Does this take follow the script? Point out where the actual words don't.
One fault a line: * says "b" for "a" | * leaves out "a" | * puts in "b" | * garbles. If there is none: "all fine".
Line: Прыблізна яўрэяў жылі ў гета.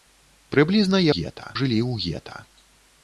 * says "гета" for "яўрэяў"